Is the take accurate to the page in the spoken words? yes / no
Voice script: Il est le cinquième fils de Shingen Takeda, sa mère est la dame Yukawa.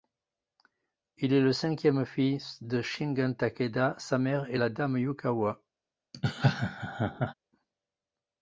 yes